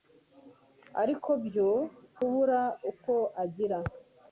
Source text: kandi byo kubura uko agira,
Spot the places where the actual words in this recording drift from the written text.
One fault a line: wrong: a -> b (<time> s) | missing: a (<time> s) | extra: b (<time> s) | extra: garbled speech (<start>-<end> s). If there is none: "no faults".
wrong: kandi -> ariko (1.0 s)